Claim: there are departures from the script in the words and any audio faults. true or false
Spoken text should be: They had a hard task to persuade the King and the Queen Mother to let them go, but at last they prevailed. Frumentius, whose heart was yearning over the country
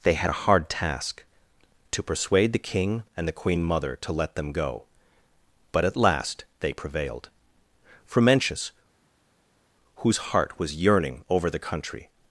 false